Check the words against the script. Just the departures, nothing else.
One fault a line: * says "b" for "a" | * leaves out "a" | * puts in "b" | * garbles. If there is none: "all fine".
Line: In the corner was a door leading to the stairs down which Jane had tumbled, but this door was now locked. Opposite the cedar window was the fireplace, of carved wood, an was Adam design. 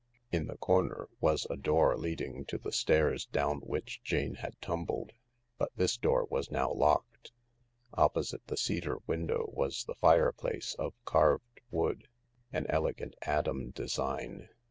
* says "elegant" for "was"